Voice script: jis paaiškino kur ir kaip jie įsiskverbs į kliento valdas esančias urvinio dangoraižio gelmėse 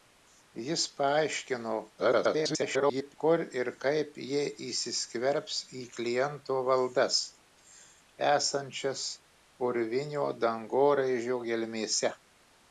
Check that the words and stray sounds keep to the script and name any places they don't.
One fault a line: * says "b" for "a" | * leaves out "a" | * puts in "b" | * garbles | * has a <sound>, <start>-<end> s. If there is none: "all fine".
* garbles